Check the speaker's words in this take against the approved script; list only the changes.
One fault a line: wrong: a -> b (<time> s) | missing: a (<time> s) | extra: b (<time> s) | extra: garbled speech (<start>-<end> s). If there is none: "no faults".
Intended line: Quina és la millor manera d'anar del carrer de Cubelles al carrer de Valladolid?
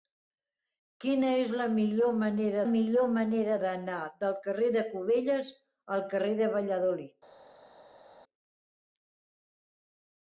extra: millor manera (2.7 s)